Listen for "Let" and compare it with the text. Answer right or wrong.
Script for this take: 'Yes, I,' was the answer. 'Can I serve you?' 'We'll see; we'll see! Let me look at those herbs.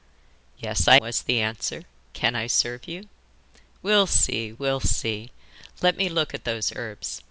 right